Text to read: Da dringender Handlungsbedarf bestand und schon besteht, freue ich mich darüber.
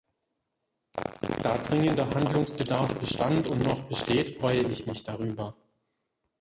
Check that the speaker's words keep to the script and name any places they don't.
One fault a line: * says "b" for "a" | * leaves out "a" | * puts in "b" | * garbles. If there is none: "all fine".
* says "noch" for "schon"